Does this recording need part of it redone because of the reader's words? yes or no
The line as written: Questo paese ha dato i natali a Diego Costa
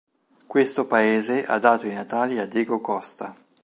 no